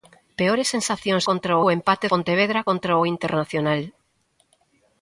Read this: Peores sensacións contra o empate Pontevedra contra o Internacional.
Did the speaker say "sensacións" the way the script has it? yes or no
yes